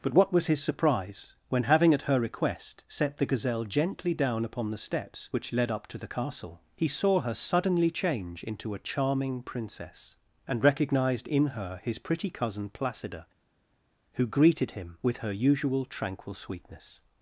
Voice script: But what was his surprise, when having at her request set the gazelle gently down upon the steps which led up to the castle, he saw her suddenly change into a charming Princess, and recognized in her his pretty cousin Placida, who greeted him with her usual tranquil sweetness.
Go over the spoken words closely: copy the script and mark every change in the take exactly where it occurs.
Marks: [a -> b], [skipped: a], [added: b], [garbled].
But what was his surprise, when having at her request set the gazelle gently down upon the steps which led up to the castle, he saw her suddenly change into a charming Princess, and recognized in her his pretty cousin Placida, who greeted him with her usual tranquil sweetness.